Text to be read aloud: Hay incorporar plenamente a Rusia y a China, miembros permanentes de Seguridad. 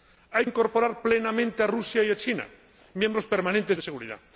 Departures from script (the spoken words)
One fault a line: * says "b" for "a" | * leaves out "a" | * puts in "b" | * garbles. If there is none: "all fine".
all fine